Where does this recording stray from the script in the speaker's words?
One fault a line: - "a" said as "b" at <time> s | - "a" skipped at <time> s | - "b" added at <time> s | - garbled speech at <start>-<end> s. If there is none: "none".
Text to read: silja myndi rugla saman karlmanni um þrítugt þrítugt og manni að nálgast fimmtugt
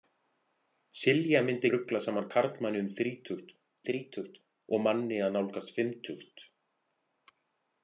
none